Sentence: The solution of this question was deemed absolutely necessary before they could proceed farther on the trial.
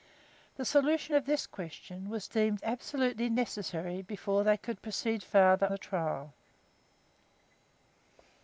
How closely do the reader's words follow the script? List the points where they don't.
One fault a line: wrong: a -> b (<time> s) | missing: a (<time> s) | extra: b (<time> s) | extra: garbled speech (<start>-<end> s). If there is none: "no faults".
missing: on (5.7 s)